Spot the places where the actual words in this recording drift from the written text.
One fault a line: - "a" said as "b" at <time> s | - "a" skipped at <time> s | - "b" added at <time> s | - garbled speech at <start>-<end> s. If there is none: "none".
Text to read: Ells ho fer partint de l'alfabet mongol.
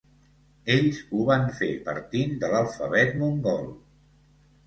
- "van" added at 1.3 s